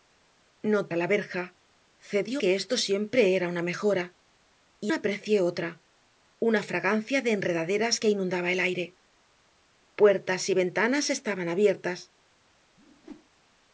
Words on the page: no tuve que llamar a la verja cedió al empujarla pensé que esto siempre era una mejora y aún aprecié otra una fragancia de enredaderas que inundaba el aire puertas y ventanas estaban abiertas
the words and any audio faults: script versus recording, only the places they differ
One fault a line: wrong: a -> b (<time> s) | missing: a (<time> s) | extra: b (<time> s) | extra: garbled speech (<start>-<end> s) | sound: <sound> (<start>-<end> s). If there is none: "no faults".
missing: tuve que llamar (0.8 s)
missing: al empujarla pensé (2.4 s)
missing: aún (4.9 s)
sound: whoosh (12.8-13.3 s)